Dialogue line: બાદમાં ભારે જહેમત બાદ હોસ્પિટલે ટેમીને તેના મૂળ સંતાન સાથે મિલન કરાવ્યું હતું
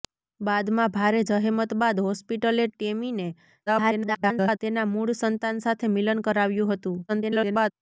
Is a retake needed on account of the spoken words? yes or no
yes